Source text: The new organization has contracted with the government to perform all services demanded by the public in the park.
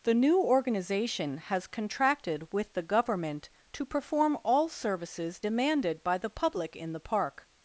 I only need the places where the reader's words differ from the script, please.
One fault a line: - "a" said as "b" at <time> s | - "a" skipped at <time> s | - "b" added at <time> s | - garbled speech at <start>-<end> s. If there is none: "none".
none